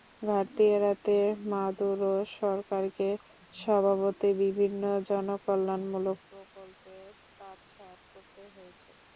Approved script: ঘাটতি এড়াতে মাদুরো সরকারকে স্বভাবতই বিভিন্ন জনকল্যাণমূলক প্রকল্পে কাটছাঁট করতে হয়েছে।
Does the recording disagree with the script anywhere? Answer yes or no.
no